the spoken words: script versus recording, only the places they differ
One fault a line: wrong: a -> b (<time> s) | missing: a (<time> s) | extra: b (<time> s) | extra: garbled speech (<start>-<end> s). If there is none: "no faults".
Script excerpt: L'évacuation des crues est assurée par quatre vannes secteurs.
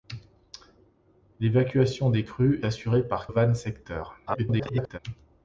missing: est (2.6 s)
missing: quatre (3.3 s)
extra: garbled speech (4.3-5.0 s)